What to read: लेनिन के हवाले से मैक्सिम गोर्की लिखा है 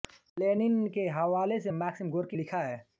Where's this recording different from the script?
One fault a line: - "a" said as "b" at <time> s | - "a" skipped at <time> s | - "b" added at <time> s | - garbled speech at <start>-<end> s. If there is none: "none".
none